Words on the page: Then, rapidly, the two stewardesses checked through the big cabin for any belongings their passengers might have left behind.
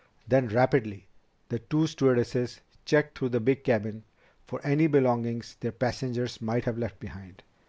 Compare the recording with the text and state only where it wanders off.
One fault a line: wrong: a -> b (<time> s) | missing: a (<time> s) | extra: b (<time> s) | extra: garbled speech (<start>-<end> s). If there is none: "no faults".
no faults